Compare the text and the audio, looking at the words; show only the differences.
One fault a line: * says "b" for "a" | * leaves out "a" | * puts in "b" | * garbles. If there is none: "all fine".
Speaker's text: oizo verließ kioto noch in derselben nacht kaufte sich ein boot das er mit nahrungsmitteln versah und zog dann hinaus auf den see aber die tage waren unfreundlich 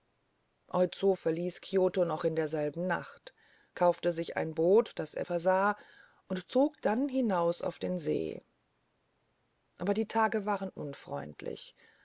* leaves out "mit nahrungsmitteln"